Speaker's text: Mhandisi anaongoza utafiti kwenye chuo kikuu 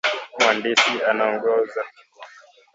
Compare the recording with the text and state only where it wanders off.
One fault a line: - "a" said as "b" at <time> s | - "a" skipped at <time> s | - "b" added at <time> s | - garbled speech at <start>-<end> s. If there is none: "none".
- "utafiti kwenye chuo" skipped at 1.8 s